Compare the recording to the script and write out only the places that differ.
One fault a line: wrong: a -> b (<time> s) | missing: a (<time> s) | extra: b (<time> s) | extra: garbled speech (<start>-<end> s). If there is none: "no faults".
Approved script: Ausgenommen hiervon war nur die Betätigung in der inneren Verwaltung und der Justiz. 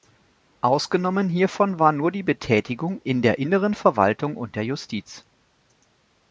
no faults